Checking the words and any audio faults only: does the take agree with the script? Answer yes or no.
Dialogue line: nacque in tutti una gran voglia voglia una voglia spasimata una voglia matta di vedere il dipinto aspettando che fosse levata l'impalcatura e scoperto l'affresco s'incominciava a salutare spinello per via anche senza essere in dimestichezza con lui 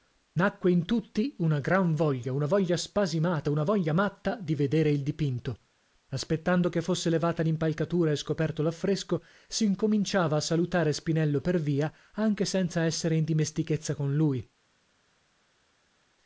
no